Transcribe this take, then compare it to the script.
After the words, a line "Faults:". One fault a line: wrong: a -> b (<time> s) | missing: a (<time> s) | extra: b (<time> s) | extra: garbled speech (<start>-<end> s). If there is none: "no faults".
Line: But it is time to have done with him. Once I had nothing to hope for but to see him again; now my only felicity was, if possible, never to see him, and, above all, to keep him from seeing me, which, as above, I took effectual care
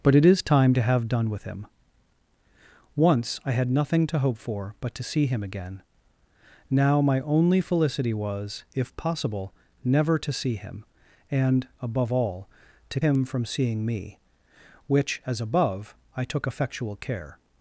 But it is time to have done with him. Once I had nothing to hope for but to see him again; now my only felicity was, if possible, never to see him, and, above all, to him from seeing me, which, as above, I took effectual care
Faults:
missing: keep (13.0 s)